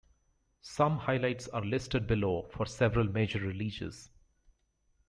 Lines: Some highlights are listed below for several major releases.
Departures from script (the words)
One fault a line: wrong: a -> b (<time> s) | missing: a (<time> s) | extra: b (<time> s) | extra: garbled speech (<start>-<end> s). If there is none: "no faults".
no faults